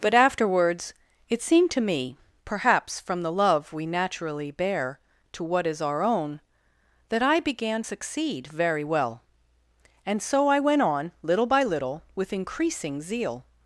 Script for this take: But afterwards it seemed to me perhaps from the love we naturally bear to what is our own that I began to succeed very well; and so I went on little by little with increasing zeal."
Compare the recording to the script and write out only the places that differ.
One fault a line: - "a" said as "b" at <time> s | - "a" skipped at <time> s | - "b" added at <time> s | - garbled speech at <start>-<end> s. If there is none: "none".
- "to" skipped at 7.8 s